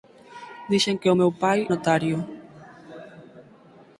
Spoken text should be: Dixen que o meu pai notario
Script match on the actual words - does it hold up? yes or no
yes